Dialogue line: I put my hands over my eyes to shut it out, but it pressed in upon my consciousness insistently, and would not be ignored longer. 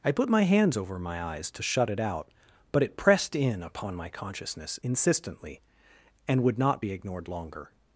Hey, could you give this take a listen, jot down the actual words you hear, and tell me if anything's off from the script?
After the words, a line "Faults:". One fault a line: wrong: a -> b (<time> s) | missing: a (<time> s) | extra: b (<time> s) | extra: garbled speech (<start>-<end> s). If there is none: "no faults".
I put my hands over my eyes to shut it out, but it pressed in upon my consciousness insistently, and would not be ignored longer.
Faults:
no faults